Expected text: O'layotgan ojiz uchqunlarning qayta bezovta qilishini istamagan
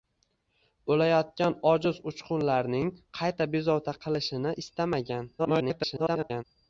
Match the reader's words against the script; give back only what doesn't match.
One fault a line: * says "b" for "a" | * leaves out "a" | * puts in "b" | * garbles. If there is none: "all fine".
* garbles